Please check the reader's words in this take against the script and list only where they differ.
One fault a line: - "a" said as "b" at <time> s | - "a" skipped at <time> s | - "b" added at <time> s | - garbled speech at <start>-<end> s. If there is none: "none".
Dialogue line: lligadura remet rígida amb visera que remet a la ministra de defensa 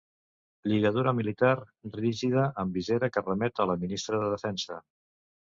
- "remet" said as "militar" at 1.2 s